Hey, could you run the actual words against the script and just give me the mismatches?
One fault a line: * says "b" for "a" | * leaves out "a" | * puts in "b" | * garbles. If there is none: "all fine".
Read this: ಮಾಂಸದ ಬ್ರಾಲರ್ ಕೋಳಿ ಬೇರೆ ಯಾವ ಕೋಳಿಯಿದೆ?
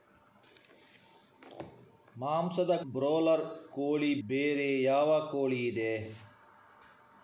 all fine